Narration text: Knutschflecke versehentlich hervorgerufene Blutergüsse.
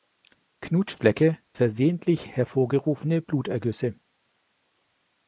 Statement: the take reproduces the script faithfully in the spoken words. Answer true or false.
true